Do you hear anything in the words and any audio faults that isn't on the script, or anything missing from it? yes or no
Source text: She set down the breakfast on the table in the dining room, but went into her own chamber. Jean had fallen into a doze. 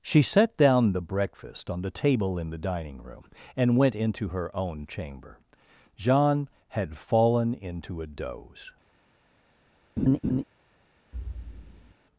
yes